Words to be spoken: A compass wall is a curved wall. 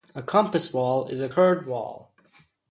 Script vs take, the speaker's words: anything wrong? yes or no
no